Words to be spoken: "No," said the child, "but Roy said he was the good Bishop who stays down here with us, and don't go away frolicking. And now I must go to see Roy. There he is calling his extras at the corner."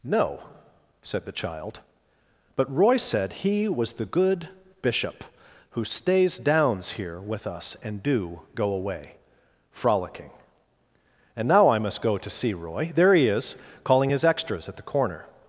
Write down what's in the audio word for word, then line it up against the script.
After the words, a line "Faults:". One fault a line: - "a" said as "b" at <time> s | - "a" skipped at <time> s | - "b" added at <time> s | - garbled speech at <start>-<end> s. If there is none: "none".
"No," said the child, "but Roy said he was the good Bishop who stays downs here with us, and do go away frolicking. And now I must go to see Roy. There he is calling his extras at the corner."
Faults:
- "down" said as "downs" at 6.4 s
- "don't" said as "do" at 8.0 s